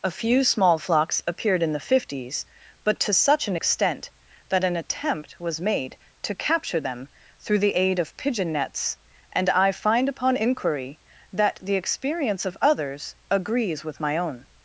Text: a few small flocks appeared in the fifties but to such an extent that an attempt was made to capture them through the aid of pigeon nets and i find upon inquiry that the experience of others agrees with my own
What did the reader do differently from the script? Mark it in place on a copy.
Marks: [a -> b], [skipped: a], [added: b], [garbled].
a few small flocks appeared in the fifties but to such an extent that an attempt was made to capture them through the aid of pigeon nets and i find upon inquiry that the experience of others agrees with my own